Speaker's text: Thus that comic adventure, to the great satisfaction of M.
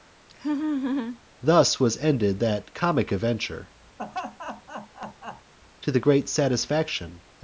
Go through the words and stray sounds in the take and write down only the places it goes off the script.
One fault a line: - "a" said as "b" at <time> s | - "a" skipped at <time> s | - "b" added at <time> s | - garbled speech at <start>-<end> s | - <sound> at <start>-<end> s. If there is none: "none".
- laugh at 0.3-1.2 s
- "was ended" added at 1.8 s
- laugh at 4.0-5.5 s